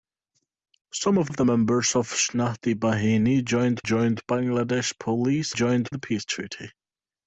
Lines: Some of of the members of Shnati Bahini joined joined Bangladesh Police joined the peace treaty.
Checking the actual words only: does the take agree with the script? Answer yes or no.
yes